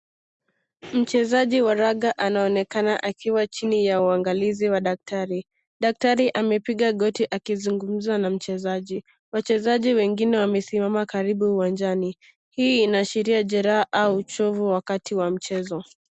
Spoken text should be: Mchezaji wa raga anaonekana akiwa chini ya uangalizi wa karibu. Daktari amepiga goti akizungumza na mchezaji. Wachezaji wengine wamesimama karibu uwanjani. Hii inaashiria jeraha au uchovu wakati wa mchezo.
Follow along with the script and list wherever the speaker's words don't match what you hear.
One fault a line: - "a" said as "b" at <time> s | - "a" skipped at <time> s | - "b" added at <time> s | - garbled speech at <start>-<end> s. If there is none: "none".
- "karibu" said as "daktari" at 4.8 s